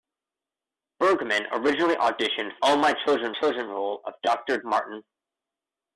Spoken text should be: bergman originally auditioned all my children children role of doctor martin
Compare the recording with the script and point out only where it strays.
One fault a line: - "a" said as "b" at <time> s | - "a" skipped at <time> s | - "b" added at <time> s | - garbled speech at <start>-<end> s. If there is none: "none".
none